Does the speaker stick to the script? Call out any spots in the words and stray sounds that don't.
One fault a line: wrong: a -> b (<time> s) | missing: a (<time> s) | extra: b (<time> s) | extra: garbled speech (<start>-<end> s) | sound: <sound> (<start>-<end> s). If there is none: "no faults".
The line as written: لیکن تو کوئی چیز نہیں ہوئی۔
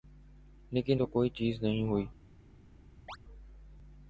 sound: chirp (3.1-3.2 s)